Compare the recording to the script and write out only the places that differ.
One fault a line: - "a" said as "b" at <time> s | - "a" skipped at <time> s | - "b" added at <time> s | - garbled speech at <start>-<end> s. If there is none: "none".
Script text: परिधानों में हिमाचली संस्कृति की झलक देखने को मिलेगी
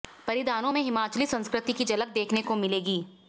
none